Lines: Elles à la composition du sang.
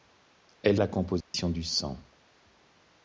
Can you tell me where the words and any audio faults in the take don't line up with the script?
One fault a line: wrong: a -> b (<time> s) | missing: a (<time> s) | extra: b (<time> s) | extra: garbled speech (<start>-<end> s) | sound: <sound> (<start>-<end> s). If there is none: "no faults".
sound: dropout (1.2-1.3 s)